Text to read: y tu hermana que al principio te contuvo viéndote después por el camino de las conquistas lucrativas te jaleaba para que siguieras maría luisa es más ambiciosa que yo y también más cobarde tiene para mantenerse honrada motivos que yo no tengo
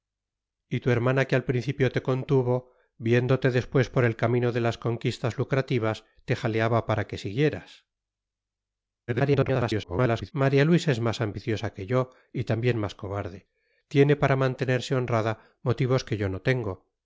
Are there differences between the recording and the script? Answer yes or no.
yes